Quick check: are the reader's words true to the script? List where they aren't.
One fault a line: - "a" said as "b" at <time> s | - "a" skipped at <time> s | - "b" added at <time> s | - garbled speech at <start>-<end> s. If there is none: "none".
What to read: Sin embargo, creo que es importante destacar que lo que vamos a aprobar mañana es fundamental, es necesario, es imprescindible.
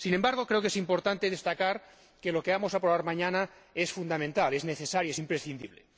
none